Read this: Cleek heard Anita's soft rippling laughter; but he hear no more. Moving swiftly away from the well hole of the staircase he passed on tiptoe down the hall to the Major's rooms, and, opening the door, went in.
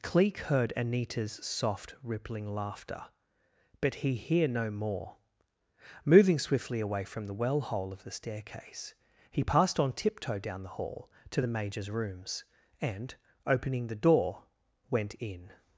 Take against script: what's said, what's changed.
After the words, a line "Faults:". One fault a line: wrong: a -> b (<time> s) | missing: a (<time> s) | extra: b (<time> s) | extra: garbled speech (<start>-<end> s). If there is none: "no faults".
Cleek heard Anita's soft rippling laughter; but he hear no more. Moving swiftly away from the well hole of the staircase he passed on tiptoe down the hall to the Major's rooms, and, opening the door, went in.
Faults:
no faults